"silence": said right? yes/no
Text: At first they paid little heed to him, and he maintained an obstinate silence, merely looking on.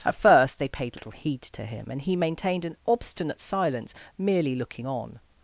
yes